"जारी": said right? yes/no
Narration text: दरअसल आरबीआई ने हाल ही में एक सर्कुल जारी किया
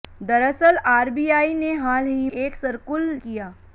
no